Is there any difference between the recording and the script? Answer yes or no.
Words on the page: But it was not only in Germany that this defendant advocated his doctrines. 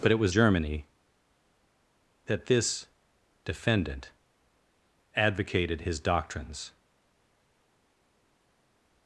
yes